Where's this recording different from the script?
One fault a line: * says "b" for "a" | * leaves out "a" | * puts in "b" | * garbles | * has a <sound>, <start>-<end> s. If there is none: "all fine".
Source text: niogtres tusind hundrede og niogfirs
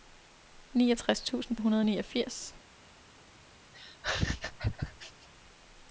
* has a laugh, 3.7-5.3 s